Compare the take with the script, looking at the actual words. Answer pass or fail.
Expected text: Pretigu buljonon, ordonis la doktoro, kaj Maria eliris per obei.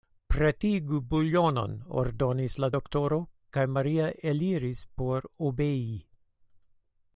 fail